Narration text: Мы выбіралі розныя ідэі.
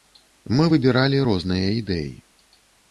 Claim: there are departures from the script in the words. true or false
false